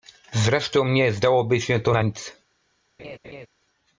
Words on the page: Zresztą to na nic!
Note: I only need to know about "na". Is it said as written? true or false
true